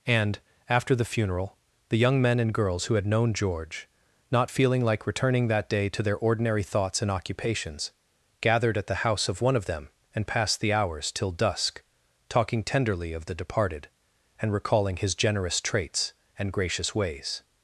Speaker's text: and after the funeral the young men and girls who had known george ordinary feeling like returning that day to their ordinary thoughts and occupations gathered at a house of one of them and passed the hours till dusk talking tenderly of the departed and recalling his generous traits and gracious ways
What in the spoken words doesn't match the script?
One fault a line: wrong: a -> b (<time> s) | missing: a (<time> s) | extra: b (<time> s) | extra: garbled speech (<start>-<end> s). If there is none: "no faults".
wrong: ordinary -> not (4.3 s)
wrong: a -> the (8.9 s)